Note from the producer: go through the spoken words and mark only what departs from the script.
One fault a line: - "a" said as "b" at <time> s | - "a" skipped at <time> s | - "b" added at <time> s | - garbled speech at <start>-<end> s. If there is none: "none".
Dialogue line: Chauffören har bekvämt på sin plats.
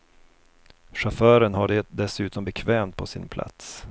- "det dessutom" added at 1.7 s